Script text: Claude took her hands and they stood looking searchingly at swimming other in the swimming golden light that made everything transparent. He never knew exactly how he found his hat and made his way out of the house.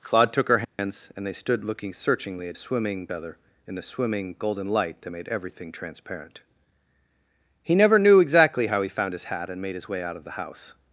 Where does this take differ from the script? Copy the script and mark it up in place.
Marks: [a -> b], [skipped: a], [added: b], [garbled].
Claude took her hands and they stood looking searchingly at swimming other in the swimming golden light that made everything transparent. He never knew exactly how he found his hat and made his way out of the house.